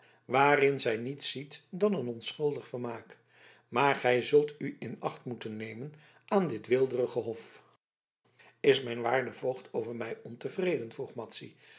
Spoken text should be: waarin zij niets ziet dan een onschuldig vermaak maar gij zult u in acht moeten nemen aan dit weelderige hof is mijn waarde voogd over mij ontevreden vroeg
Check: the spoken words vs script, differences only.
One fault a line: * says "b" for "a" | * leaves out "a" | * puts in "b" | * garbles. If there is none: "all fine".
all fine